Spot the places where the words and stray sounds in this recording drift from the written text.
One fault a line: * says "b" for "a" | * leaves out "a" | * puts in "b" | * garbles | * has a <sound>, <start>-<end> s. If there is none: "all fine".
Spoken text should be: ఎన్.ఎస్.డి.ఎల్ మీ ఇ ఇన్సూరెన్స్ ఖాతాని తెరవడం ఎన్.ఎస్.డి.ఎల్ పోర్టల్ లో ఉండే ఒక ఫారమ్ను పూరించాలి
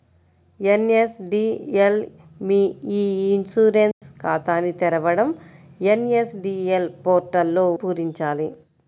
* has a dropout, 3.9-4.0 s
* leaves out "ఉండే ఒక ఫారమ్ను"